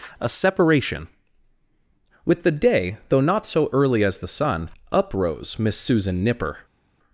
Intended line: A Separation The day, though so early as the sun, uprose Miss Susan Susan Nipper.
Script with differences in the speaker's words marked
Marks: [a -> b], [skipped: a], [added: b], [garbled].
A Separation [added: With] The day, though [added: not] so early as the sun, uprose Miss Susan [skipped: Susan] Nipper.